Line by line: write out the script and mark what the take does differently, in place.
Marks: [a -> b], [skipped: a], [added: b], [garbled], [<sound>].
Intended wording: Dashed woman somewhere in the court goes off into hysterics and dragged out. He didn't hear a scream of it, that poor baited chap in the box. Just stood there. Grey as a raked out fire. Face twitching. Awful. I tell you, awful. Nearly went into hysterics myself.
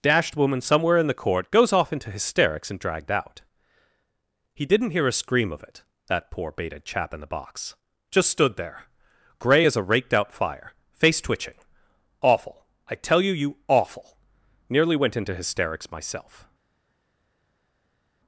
Dashed woman somewhere in the court goes off into hysterics and dragged out. He didn't hear a scream of it, that poor baited chap in the box. Just stood there. Grey as a raked out fire. Face twitching. Awful. I tell you, [added: you] awful. Nearly went into hysterics myself.